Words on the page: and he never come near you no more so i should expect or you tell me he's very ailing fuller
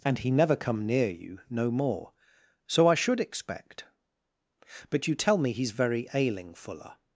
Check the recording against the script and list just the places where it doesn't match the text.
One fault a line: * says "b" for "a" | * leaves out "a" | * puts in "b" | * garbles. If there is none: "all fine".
* says "but" for "or"